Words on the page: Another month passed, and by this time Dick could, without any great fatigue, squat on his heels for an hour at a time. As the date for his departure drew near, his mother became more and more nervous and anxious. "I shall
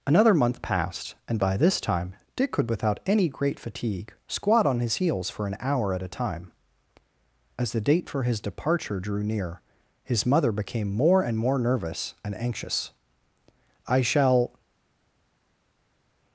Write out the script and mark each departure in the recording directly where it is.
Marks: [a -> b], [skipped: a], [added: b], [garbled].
Another month passed, and by this time Dick could, without any great fatigue, squat on his heels for an hour at a time. As the date for his departure drew near, his mother became more and more nervous and anxious. "I shall